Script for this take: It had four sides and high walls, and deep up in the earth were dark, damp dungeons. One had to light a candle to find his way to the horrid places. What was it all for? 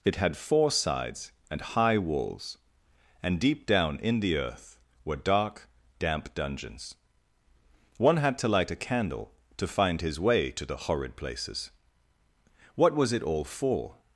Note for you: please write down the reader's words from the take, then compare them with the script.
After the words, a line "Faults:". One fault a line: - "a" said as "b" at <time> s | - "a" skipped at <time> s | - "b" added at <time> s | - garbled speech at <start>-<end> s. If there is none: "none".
It had four sides and high walls, and deep down in the earth were dark, damp dungeons. One had to light a candle to find his way to the horrid places. What was it all for?
Faults:
- "up" said as "down" at 3.6 s